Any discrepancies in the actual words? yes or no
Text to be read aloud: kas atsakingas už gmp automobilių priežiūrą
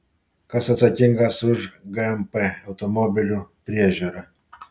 no